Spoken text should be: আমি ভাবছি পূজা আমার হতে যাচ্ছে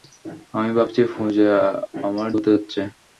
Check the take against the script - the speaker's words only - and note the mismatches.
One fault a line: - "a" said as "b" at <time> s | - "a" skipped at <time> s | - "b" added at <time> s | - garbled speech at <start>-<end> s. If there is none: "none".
none